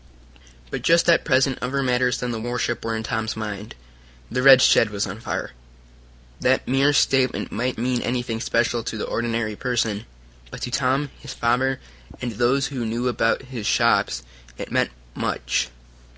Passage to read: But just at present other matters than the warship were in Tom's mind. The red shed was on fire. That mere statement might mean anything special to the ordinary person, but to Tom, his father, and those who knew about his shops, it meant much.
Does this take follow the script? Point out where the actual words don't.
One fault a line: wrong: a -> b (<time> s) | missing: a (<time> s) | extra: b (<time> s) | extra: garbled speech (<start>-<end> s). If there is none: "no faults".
no faults